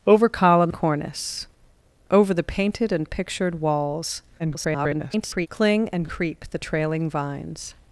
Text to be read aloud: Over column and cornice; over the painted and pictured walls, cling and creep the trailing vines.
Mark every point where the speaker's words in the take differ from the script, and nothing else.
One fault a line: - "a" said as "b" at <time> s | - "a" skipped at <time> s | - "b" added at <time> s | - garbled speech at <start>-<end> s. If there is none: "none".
- "and" skipped at 0.7 s
- garbled speech at 4.4-5.5 s